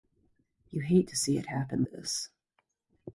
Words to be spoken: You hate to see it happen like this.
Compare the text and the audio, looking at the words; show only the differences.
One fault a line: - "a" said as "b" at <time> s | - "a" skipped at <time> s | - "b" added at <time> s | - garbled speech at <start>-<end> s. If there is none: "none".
- "like" skipped at 1.8 s